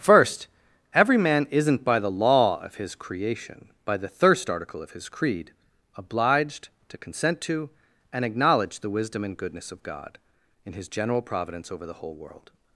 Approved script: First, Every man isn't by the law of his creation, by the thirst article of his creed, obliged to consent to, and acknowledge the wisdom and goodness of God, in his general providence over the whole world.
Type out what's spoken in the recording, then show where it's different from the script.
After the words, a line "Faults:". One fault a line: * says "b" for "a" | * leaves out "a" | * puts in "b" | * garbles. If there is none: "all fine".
First, Every man isn't by the law of his creation, by the thirst article of his creed, obliged to consent to, and acknowledge the wisdom and goodness of God, in his general providence over the whole world.
Faults:
all fine